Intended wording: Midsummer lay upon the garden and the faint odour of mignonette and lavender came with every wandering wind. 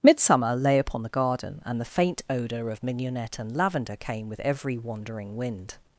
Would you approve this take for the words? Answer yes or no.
yes